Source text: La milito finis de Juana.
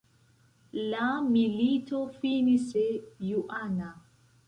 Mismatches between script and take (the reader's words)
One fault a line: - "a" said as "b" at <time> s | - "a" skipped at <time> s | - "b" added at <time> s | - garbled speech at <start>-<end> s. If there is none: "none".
none